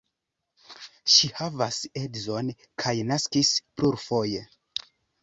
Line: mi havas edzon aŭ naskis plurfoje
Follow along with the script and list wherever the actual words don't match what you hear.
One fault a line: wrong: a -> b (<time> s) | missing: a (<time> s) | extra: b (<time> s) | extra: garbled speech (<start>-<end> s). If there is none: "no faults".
wrong: mi -> ŝi (1.1 s)
wrong: aŭ -> kaj (2.9 s)